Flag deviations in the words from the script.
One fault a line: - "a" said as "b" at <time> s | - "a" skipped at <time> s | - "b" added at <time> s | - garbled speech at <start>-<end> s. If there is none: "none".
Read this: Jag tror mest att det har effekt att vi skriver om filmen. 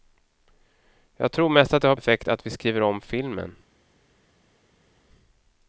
none